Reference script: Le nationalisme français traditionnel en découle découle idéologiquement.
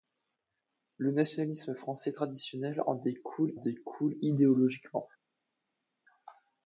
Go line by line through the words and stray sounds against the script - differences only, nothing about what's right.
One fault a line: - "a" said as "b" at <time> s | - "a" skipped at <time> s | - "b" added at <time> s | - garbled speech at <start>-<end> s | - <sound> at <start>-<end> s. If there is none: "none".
none